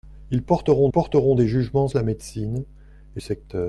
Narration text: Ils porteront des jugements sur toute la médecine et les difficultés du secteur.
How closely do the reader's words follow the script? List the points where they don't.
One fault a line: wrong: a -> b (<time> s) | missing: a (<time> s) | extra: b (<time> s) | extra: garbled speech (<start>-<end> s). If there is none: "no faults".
extra: porteront (0.9 s)
missing: sur toute (1.9 s)
missing: les difficultés du (3.2 s)